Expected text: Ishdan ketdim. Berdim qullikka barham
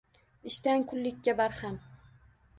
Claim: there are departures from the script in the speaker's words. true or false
true